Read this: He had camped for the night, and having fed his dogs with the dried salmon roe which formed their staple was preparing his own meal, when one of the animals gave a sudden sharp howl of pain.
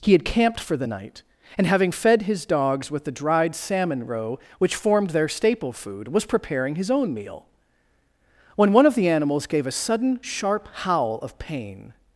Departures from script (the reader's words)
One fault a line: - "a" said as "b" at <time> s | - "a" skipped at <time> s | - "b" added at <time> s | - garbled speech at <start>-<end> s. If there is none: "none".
- "food" added at 5.7 s